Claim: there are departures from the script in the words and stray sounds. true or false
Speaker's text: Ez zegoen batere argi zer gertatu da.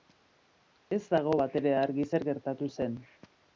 true